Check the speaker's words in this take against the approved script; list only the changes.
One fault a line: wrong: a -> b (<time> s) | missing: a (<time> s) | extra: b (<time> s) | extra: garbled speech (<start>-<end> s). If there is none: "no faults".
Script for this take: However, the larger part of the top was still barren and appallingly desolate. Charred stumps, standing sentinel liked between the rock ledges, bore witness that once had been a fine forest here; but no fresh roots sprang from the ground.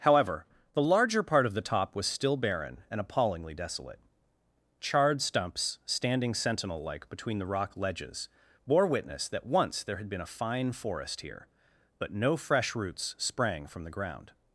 wrong: liked -> like (6.8 s)
extra: there (9.8 s)